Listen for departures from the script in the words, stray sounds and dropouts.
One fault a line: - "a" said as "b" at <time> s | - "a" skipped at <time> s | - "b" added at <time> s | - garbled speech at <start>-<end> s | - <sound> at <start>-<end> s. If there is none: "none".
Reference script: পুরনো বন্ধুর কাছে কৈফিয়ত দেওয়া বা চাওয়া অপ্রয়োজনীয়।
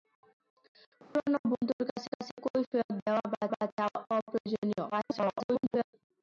- dropout at 1.0-1.2 s
- "কাছে" added at 2.1 s
- "বা" added at 3.5 s
- garbled speech at 4.9-5.9 s